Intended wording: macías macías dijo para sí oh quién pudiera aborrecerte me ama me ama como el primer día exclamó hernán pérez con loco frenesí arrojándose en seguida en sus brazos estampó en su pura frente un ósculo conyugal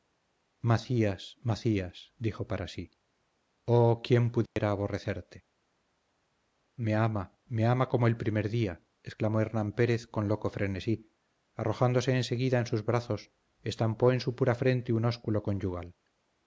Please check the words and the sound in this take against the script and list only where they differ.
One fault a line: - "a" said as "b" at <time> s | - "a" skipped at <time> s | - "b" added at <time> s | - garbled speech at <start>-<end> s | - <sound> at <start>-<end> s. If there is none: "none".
- dropout at 4.5-4.6 s